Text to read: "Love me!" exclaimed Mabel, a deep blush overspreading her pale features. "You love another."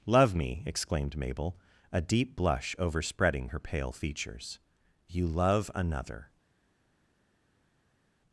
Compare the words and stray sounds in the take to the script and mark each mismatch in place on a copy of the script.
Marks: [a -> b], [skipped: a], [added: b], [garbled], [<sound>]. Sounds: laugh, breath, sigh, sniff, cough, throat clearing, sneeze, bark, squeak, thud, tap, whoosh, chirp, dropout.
"Love me!" exclaimed Mabel, a deep blush overspreading her pale features. "You love another."